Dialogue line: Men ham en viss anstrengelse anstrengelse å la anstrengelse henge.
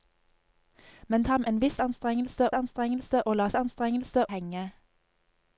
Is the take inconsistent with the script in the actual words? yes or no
no